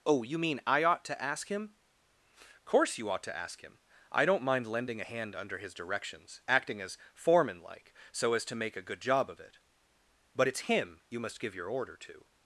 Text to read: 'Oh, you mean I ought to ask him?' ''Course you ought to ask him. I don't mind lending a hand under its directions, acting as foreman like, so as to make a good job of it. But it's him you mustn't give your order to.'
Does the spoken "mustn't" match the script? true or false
false